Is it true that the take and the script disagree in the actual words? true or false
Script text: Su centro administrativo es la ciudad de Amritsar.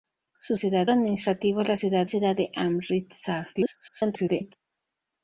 true